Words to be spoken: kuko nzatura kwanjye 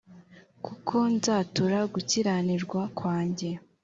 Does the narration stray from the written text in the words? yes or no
yes